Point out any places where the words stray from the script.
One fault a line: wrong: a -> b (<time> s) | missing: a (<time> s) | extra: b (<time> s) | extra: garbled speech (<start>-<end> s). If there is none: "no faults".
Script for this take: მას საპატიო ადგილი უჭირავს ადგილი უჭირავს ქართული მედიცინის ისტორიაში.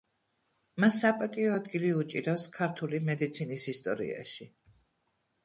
missing: ადგილი უჭირავს (2.5 s)